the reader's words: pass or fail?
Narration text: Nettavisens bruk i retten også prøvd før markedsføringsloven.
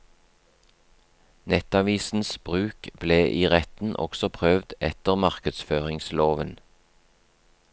fail